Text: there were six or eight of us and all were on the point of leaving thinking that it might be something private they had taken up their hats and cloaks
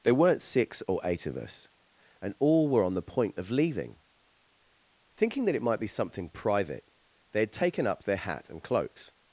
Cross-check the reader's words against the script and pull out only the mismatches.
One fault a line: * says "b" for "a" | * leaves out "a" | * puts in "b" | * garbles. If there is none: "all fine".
* says "weren't" for "were"
* says "hat" for "hats"